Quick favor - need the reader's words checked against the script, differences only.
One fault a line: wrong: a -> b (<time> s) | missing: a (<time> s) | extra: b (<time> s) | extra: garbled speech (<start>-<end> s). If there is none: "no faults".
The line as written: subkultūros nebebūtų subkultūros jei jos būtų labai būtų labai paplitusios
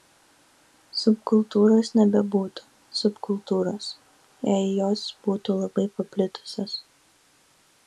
missing: būtų labai (5.9 s)